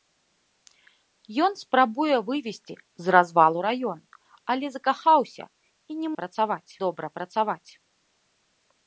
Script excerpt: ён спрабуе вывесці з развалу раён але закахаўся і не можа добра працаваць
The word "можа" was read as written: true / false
false